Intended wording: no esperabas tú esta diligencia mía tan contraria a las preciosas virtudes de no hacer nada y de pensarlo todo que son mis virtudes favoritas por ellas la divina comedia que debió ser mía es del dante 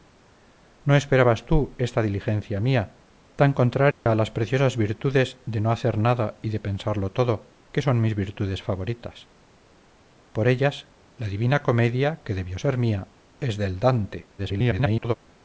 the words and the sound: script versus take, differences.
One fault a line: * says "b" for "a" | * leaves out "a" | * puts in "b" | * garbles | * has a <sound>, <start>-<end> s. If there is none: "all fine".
* has a dropout, 3.9-4.1 s
* garbles